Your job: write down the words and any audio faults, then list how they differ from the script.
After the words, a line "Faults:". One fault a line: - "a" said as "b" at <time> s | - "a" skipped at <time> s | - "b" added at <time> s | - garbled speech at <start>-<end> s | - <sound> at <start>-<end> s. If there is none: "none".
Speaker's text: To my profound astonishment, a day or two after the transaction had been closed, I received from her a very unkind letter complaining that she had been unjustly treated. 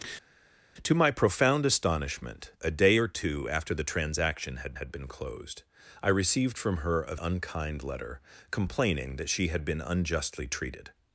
To my profound astonishment, a day or two after the transaction had had been closed, I received from her a unkind letter complaining that she had been unjustly treated.
Faults:
- "had" added at 4.7 s
- "very" skipped at 7.1 s